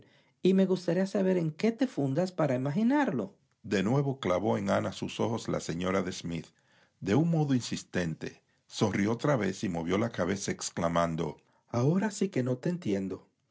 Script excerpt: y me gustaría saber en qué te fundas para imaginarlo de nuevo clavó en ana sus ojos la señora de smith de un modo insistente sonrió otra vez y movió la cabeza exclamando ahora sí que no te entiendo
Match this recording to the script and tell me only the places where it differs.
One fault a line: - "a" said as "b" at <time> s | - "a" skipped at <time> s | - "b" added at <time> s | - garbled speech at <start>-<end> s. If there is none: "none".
none